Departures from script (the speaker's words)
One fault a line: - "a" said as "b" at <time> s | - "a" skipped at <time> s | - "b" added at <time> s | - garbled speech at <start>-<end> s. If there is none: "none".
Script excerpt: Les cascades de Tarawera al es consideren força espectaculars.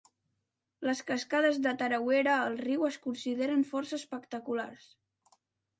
- "riu" added at 2.6 s